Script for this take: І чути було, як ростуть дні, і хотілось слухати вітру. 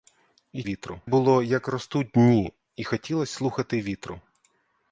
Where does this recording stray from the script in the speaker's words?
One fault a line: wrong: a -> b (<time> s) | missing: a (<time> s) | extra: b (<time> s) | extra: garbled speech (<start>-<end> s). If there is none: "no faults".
wrong: чути -> вітру (0.6 s)